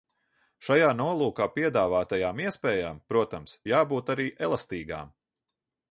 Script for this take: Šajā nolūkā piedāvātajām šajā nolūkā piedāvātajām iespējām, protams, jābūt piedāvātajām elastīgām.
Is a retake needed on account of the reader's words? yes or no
yes